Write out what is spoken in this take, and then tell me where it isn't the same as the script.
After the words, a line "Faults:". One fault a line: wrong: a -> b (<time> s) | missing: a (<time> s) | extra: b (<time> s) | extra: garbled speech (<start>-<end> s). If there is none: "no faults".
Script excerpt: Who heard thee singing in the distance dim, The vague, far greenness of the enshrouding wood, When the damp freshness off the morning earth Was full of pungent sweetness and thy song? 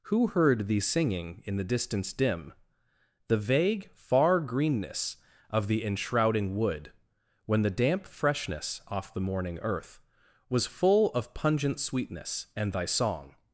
Who heard thee singing in the distance dim, The vague, far greenness of the enshrouding wood, When the damp freshness off the morning earth Was full of pungent sweetness and thy song?
Faults:
no faults